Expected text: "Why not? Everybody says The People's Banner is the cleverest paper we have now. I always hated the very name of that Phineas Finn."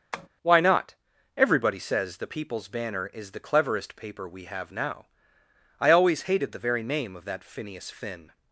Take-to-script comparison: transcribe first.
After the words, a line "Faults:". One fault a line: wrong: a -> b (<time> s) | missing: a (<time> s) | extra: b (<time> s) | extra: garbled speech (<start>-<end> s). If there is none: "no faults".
"Why not? Everybody says The People's Banner is the cleverest paper we have now. I always hated the very name of that Phineas Finn."
Faults:
no faults